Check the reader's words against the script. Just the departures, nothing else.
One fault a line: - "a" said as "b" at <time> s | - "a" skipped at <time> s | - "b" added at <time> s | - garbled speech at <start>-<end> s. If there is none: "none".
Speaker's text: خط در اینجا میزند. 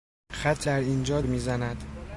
none